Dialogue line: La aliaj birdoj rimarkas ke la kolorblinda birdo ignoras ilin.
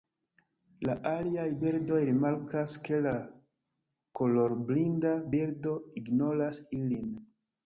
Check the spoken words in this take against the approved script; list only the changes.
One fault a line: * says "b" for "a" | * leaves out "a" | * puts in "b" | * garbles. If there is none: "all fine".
all fine